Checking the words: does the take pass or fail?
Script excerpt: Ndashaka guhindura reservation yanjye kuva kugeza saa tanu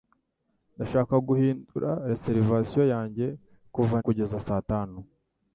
pass